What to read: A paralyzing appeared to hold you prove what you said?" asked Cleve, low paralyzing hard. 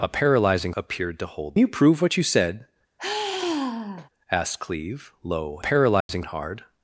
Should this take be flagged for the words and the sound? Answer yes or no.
yes